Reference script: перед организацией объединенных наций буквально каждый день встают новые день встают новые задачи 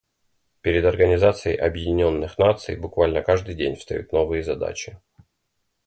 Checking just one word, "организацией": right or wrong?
right